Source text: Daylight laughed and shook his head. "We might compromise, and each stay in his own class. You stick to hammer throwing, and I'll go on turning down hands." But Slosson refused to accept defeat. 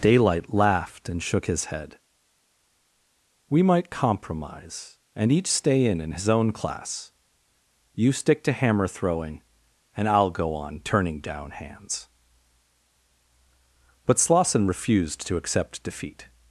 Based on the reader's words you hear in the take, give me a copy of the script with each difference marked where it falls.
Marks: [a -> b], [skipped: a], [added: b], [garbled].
Daylight laughed and shook his head. "We might compromise, and each stay in [added: in] his own class. You stick to hammer throwing, and I'll go on turning down hands." But Slosson refused to accept defeat.